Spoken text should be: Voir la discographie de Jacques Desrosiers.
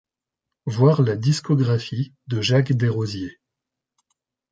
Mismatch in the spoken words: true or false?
false